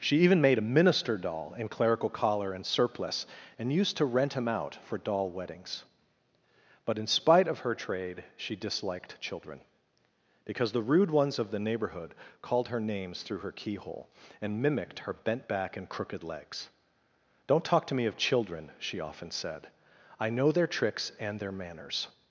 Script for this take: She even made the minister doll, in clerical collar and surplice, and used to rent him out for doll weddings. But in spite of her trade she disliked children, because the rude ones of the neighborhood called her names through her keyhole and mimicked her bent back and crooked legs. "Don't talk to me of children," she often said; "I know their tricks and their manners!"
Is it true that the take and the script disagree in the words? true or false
true